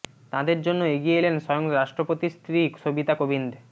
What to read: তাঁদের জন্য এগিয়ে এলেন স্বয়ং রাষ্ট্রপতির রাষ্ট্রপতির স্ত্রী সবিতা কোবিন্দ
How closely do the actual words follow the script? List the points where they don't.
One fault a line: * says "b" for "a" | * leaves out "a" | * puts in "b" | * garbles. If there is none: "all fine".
* leaves out "রাষ্ট্রপতির"